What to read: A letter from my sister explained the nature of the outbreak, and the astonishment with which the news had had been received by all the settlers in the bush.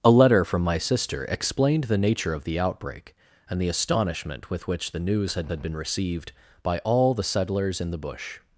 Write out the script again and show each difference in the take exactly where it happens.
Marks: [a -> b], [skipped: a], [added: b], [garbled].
A letter from my sister explained the nature of the outbreak, and the astonishment with which the news had had been received by all the settlers in the bush.